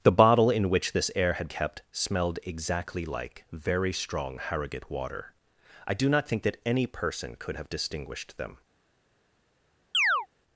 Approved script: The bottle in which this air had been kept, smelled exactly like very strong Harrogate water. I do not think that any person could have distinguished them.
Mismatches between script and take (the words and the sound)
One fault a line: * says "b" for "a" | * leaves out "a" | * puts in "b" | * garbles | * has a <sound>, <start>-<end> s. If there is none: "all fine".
* leaves out "been"
* has a chirp, 9.9-10.3 s